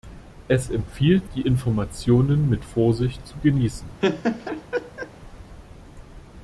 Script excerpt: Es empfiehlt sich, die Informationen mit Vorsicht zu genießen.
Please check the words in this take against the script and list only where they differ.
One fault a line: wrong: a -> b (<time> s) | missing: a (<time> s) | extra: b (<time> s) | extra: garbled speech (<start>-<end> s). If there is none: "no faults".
missing: sich (1.3 s)